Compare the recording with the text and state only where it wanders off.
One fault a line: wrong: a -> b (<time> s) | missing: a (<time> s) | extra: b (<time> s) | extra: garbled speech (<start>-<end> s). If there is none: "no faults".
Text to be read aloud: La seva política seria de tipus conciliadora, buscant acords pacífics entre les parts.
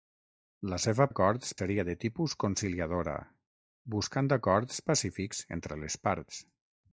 wrong: política -> acords (1.1 s)